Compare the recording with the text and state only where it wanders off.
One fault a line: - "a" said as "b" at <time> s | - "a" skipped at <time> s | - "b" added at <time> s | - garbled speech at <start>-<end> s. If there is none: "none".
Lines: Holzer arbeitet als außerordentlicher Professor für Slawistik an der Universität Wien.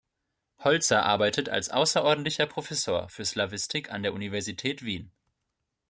none